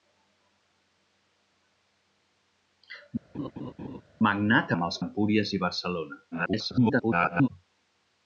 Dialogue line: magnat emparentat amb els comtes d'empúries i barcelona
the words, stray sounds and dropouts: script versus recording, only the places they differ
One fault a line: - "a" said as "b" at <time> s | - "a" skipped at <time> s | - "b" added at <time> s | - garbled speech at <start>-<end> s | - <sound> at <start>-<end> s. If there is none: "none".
- laugh at 3.3-4.0 s
- "emparentat" skipped at 4.7 s
- "comtes" skipped at 5.0 s
- garbled speech at 6.3-7.5 s